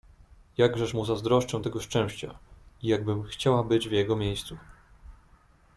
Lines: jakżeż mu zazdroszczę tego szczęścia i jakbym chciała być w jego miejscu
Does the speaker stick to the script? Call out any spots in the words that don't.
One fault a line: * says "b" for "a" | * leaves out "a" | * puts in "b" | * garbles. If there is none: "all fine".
all fine